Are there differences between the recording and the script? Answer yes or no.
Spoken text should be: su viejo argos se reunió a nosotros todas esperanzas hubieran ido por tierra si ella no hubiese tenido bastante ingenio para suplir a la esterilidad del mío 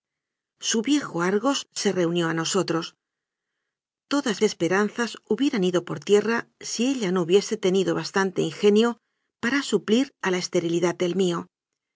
no